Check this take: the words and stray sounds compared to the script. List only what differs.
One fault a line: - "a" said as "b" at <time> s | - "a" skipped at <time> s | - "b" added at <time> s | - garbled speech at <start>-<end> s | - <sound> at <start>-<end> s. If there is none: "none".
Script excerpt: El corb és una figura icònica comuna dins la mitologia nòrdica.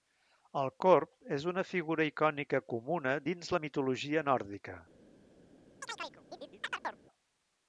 - chirp at 5.8-7.0 s